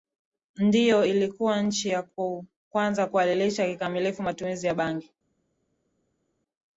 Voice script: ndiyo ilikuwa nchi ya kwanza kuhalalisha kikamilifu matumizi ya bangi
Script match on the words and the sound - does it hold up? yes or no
yes